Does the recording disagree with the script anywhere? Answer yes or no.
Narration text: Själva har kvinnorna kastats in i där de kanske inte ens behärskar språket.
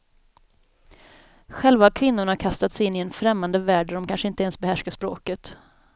yes